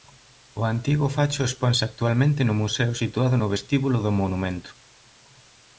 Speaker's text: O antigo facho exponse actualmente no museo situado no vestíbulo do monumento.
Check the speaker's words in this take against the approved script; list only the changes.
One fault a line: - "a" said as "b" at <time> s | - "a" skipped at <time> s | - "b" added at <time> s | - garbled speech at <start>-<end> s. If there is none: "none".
none